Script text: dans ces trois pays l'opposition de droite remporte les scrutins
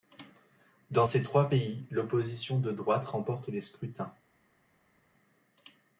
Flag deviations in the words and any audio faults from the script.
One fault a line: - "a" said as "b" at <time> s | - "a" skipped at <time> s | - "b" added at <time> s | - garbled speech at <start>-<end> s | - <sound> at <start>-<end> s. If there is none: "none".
none